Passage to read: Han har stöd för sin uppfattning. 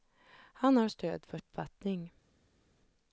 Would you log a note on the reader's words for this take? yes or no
yes